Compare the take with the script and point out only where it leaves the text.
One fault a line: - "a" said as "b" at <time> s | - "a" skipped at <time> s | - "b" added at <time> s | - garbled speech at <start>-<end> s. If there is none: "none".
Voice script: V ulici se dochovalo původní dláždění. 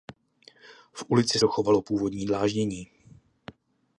- "se" skipped at 1.4 s